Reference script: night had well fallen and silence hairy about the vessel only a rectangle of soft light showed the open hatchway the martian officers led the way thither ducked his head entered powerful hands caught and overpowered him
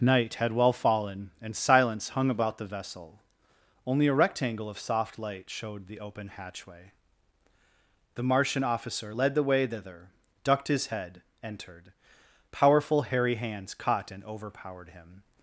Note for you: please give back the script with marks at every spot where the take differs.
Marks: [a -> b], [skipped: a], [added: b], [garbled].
night had well fallen and silence [hairy -> hung] about the vessel only a rectangle of soft light showed the open hatchway the martian [officers -> officer] led the way thither ducked his head entered powerful [added: hairy] hands caught and overpowered him